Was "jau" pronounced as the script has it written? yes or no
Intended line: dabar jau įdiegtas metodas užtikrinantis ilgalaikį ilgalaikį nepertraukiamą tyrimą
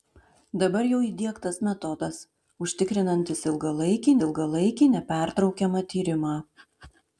yes